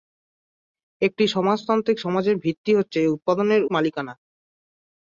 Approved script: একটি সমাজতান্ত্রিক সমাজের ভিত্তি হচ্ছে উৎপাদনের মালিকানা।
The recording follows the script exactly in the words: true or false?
true